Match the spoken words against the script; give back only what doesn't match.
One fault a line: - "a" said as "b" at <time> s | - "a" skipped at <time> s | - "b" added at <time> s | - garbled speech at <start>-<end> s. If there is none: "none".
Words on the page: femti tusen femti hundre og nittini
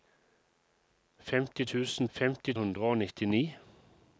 none